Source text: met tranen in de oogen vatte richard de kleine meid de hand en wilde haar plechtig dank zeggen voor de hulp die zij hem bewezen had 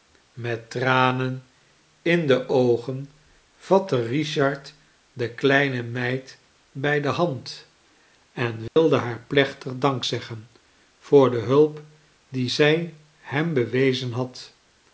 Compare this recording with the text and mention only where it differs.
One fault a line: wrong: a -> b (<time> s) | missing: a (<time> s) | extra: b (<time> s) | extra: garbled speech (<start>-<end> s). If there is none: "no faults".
extra: bij (6.7 s)